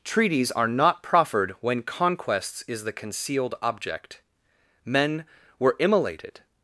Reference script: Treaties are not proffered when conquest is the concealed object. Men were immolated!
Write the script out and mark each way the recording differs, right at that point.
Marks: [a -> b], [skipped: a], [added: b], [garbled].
Treaties are not proffered when [conquest -> conquests] is the concealed object. Men were immolated!